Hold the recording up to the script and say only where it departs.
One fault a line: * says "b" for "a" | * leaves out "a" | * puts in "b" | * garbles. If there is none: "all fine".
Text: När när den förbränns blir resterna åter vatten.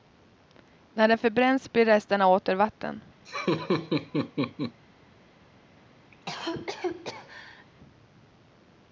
* leaves out "när"